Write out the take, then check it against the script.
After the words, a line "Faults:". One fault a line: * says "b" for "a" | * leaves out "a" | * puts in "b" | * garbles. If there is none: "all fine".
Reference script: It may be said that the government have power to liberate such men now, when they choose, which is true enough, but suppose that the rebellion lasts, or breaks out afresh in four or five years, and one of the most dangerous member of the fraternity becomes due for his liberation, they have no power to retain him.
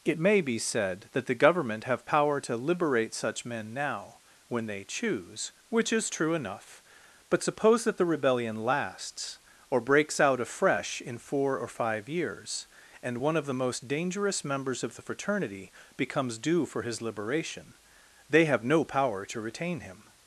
It may be said that the government have power to liberate such men now, when they choose, which is true enough, but suppose that the rebellion lasts, or breaks out afresh in four or five years, and one of the most dangerous members of the fraternity becomes due for his liberation, they have no power to retain him.
Faults:
* says "members" for "member"